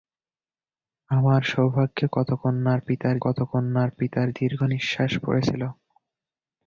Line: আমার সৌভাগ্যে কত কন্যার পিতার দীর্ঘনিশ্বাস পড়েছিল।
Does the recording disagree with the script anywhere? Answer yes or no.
yes